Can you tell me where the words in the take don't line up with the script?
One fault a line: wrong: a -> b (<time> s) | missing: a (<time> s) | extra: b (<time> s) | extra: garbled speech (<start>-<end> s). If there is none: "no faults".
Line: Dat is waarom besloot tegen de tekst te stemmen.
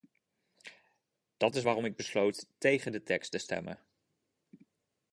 extra: ik (1.8 s)